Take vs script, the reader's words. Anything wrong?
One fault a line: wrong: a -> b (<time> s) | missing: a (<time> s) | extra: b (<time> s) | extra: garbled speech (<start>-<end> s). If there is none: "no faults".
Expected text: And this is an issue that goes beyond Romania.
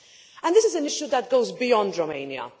no faults